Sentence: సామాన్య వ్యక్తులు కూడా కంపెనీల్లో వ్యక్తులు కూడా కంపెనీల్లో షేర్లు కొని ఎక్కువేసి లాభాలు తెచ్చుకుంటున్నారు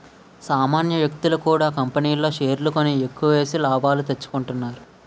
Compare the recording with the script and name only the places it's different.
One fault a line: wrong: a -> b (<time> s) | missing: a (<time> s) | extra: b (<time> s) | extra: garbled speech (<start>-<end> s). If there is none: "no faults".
missing: వ్యక్తులు కూడా కంపెనీల్లో (2.3 s)